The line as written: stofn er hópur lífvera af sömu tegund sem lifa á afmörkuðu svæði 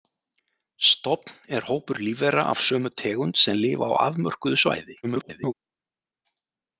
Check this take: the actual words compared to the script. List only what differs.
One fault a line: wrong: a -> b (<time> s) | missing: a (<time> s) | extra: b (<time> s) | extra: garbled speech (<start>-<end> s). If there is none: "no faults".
extra: garbled speech (5.0-5.5 s)